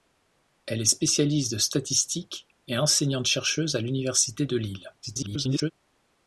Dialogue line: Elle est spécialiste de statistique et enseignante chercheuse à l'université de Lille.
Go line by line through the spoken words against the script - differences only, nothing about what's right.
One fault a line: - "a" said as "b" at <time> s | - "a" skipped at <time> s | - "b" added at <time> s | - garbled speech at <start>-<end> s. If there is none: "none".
- garbled speech at 5.0-5.7 s